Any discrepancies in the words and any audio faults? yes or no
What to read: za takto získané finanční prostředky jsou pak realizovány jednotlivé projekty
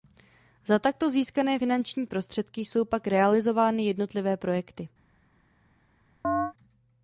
yes